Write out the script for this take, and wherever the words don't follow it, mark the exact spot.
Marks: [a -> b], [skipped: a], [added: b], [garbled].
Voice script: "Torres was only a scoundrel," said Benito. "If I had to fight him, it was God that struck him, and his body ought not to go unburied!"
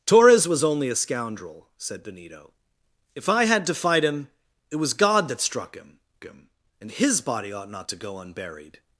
"Torres was only a scoundrel," said Benito. "If I had to fight him, it was God that struck him, [added: him] and his body ought not to go unburied!"